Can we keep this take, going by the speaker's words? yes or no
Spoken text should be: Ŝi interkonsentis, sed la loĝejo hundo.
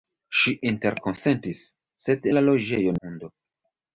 yes